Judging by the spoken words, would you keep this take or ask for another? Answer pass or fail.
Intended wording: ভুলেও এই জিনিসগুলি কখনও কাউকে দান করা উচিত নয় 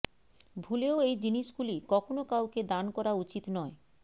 pass